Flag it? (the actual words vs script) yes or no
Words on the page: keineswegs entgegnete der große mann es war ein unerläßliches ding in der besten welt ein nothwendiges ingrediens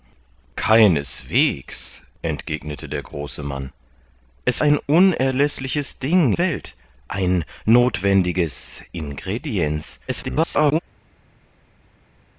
yes